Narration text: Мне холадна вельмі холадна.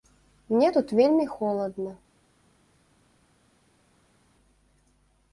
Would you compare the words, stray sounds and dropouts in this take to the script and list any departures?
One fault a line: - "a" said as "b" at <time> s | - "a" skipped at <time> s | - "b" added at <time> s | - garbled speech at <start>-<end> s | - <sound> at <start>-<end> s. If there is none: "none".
- "холадна" said as "тут" at 0.7 s